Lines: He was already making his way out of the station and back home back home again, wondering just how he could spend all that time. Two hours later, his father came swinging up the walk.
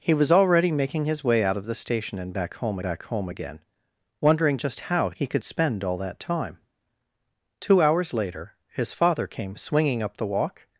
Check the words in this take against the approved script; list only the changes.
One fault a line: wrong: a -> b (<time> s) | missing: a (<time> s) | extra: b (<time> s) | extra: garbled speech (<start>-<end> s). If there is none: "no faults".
no faults